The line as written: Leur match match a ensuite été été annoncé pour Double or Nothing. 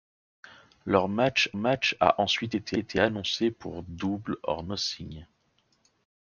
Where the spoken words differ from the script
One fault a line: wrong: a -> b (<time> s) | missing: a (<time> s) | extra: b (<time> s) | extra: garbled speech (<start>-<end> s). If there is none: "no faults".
no faults